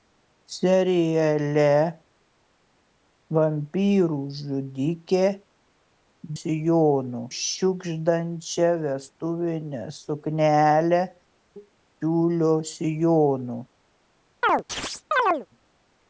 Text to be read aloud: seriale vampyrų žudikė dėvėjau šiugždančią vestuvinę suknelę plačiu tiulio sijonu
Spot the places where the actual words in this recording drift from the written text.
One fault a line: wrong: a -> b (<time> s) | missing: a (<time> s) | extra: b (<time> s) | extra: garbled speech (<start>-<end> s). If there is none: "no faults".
wrong: dėvėjau -> sijonu (6.4 s)
missing: plačiu (11.0 s)